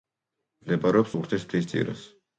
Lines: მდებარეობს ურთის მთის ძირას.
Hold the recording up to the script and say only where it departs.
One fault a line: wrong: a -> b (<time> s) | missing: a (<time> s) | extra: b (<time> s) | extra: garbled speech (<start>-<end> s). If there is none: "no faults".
no faults